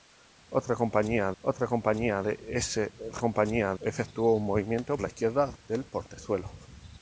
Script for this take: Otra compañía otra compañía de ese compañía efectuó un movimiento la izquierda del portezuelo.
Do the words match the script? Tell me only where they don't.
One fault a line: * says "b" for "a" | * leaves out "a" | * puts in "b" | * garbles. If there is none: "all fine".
all fine